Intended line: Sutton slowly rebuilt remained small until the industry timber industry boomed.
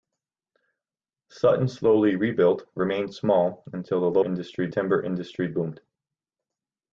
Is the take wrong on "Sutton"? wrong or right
right